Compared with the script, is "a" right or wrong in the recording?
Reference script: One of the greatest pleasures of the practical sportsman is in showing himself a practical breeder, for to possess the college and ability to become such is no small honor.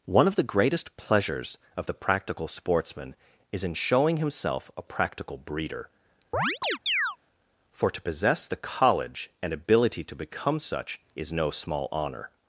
right